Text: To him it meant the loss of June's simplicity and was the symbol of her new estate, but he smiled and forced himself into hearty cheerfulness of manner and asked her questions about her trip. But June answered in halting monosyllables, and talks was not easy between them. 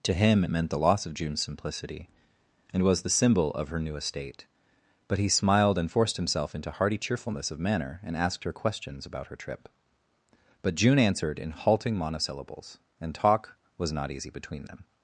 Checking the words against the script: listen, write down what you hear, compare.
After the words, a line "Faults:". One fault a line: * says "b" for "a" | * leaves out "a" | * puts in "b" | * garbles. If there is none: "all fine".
To him it meant the loss of June's simplicity and was the symbol of her new estate, but he smiled and forced himself into hearty cheerfulness of manner and asked her questions about her trip. But June answered in halting monosyllables, and talk was not easy between them.
Faults:
* says "talk" for "talks"